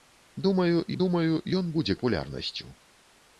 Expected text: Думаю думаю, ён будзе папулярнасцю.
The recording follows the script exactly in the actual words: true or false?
true